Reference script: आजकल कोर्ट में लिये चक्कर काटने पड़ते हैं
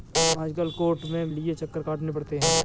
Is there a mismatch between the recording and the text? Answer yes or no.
no